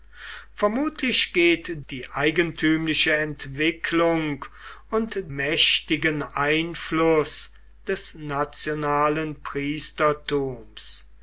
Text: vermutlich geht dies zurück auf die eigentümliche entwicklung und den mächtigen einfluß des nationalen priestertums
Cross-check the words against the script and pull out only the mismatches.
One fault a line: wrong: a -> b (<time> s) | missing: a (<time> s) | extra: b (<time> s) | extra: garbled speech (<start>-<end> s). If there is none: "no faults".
missing: dies zurück auf (1.7 s)
missing: den (5.3 s)